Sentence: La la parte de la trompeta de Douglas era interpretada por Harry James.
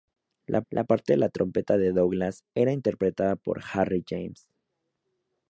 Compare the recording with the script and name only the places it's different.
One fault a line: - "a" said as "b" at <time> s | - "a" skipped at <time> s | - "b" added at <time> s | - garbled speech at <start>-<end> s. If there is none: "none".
none